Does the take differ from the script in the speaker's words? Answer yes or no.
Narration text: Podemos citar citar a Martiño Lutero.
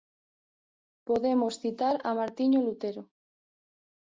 yes